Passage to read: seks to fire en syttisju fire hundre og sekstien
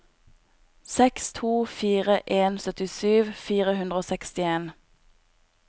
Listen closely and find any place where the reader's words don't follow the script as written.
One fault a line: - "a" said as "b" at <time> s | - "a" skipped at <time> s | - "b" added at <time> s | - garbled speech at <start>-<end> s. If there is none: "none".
none